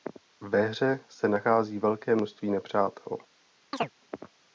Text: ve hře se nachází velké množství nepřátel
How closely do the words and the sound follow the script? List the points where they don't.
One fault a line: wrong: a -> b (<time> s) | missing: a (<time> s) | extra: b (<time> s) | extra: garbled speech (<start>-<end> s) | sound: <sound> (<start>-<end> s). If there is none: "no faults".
sound: chirp (3.7-3.9 s)